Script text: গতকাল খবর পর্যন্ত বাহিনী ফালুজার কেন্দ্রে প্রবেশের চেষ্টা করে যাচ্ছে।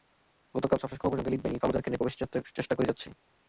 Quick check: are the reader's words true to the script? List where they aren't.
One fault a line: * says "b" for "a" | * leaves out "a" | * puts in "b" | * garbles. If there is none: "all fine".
* puts in "সবশেষ"
* puts in "এলিট"